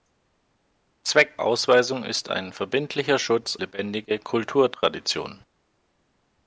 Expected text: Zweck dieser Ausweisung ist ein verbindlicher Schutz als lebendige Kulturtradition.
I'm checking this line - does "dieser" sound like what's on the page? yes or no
no